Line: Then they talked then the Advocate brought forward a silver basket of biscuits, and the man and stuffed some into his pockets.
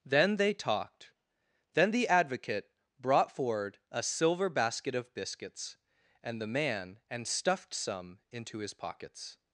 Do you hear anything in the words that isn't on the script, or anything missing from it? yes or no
no